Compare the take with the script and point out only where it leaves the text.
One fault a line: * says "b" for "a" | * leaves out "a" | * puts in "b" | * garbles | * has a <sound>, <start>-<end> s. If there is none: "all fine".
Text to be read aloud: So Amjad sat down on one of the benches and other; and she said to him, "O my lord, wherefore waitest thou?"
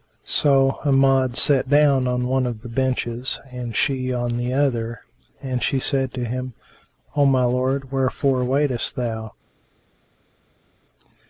* puts in "she on the"